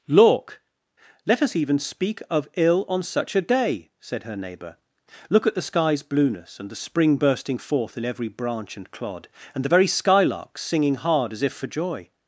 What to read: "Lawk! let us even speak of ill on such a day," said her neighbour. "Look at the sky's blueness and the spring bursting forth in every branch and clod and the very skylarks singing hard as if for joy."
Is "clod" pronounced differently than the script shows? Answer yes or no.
no